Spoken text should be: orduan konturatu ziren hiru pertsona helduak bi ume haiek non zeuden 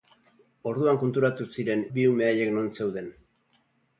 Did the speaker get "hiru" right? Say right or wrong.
wrong